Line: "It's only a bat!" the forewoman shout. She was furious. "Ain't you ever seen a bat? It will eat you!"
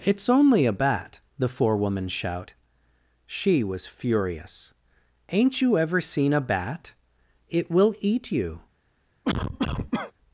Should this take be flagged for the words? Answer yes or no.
no